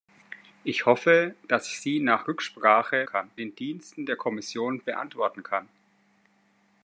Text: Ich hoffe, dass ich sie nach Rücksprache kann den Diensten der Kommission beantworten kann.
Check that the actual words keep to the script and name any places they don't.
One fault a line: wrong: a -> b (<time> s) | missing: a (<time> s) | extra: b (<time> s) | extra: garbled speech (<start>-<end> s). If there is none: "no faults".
no faults